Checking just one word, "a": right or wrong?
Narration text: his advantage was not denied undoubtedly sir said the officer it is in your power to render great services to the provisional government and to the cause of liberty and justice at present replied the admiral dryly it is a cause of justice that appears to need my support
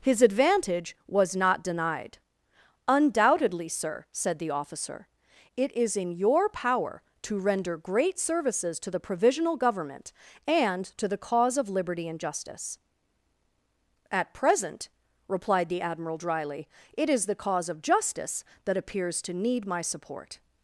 wrong